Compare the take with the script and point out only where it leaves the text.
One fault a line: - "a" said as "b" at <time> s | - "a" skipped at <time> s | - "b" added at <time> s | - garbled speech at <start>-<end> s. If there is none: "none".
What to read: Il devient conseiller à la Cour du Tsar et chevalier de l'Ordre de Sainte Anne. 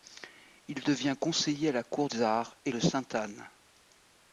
- "du" skipped at 2.1 s
- "chevalier de l'Ordre" skipped at 2.7 s